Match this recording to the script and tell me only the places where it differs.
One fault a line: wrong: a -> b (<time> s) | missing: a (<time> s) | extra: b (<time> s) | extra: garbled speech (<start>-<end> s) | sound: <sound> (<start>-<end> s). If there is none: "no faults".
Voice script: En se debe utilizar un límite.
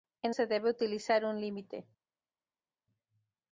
no faults